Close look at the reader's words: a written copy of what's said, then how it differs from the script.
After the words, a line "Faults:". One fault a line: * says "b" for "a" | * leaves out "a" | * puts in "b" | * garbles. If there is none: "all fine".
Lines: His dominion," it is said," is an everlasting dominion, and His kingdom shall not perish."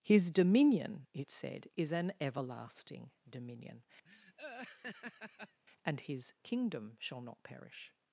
His dominion," it said," is an everlasting dominion, and His kingdom shall not perish."
Faults:
* leaves out "is"